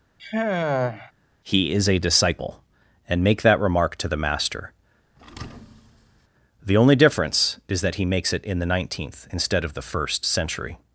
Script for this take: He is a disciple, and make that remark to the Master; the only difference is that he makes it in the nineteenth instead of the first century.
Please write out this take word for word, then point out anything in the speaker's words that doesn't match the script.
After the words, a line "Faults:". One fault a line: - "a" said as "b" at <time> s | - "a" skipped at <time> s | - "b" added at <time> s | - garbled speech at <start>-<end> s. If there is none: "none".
He is a disciple, and make that remark to the Master; the only difference is that he makes it in the nineteenth instead of the first century.
Faults:
none